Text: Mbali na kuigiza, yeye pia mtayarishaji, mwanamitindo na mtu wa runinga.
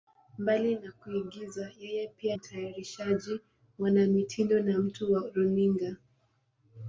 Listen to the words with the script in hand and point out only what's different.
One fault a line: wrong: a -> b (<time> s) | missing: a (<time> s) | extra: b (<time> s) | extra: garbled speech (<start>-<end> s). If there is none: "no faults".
no faults